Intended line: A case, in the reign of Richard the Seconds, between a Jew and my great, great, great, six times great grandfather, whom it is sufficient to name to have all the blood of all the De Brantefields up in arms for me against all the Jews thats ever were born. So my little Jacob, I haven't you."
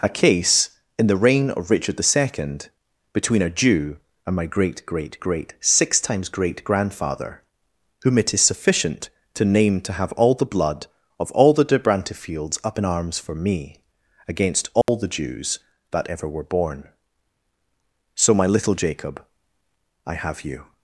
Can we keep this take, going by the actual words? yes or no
no